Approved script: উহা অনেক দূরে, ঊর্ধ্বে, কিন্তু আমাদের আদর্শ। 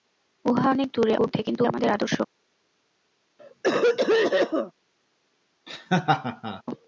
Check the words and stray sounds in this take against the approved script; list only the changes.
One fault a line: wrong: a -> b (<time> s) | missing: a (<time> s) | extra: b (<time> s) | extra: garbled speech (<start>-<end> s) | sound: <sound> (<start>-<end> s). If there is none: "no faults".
sound: cough (3.4-4.7 s)
sound: laugh (5.7-6.6 s)